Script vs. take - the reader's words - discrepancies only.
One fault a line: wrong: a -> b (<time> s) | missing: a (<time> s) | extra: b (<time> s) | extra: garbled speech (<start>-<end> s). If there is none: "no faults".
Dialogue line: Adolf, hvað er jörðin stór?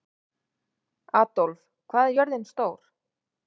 no faults